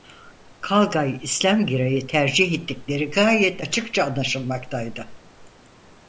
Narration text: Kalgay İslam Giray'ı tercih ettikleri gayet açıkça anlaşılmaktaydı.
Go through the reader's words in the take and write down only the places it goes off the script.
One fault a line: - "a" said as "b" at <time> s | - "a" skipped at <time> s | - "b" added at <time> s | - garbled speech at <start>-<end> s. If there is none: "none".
none